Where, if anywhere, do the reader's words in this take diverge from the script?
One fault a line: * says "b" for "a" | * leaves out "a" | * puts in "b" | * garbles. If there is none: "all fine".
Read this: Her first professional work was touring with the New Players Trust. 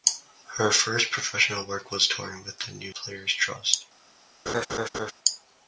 all fine